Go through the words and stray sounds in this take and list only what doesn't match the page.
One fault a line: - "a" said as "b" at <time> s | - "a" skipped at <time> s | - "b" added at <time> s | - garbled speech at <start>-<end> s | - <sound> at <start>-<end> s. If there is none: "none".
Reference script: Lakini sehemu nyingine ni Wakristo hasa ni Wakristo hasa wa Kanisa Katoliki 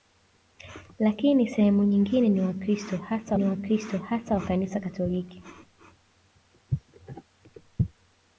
none